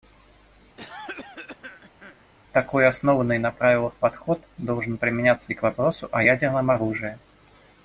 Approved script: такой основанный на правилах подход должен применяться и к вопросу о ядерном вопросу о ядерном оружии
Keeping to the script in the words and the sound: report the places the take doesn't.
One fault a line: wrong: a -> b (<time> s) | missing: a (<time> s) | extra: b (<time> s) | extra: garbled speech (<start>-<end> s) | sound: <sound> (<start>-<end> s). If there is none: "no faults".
sound: cough (0.8-2.3 s)
missing: вопросу о ядерном (6.7 s)